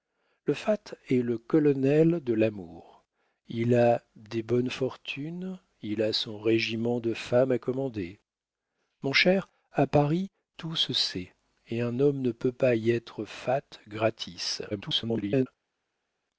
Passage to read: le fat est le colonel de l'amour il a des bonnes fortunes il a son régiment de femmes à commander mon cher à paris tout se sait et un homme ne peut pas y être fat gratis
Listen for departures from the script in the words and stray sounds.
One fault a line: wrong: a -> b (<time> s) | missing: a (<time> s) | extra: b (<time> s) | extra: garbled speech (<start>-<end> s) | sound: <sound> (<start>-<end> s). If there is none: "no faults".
extra: garbled speech (14.7-15.5 s)